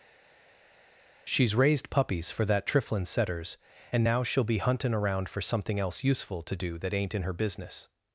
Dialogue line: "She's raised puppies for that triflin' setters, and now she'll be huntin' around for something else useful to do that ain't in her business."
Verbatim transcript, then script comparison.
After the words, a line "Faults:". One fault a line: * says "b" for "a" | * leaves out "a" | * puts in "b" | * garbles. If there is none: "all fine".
"She's raised puppies for that triflin' setters, and now she'll be huntin' around for something else useful to do that ain't in her business."
Faults:
all fine